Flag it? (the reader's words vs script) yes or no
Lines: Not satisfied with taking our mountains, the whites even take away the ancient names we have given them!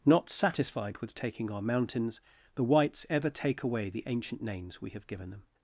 yes